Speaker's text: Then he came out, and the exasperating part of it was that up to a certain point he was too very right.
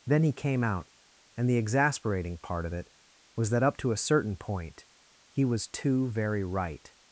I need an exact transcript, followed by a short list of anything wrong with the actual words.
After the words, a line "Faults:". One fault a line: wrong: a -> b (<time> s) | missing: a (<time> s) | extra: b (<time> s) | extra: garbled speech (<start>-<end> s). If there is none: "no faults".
Then he came out, and the exasperating part of it was that up to a certain point he was too very right.
Faults:
no faults